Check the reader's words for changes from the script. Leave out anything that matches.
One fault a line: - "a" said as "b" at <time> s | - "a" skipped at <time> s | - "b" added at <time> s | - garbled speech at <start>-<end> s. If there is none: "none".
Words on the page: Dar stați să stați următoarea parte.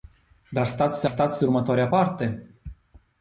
none